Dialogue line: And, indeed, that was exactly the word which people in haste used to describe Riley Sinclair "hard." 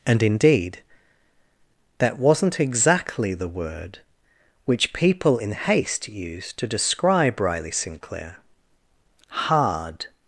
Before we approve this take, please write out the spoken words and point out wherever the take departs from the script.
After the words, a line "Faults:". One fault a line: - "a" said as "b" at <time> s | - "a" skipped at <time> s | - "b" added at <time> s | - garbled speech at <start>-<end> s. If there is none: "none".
And, indeed, that wasn't exactly the word which people in haste used to describe Riley Sinclair "hard."
Faults:
- "was" said as "wasn't" at 2.2 s